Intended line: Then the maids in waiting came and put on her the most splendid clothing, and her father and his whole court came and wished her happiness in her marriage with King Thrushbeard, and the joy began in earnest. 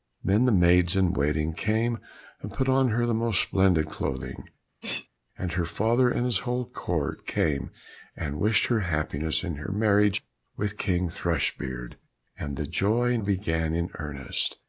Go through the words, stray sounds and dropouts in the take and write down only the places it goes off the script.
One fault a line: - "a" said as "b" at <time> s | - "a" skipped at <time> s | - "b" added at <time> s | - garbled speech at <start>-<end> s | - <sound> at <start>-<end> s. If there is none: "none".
- sneeze at 4.8-5.1 s